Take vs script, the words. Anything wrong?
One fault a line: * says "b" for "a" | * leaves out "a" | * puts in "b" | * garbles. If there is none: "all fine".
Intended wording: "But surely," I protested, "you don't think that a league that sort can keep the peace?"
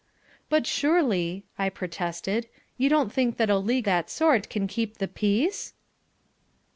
all fine